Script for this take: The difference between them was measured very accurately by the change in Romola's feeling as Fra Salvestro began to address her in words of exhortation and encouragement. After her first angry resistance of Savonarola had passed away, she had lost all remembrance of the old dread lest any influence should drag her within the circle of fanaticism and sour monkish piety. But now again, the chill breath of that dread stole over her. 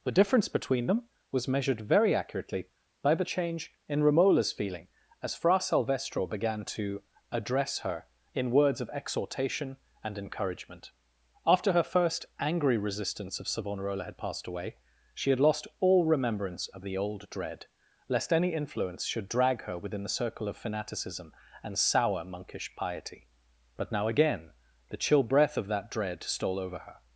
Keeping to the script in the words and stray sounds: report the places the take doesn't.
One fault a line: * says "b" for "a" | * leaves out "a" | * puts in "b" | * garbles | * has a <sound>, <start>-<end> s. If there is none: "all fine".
all fine